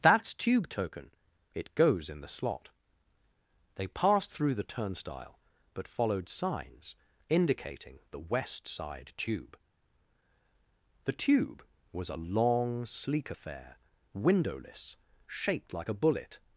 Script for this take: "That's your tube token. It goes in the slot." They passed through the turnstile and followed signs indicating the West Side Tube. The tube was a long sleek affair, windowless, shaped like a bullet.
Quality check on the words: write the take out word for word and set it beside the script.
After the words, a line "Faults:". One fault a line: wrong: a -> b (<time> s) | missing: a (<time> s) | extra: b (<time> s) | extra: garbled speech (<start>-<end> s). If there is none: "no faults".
"That's tube token. It goes in the slot." They passed through the turnstile but followed signs indicating the West Side Tube. The tube was a long sleek affair, windowless, shaped like a bullet.
Faults:
missing: your (0.3 s)
wrong: and -> but (5.7 s)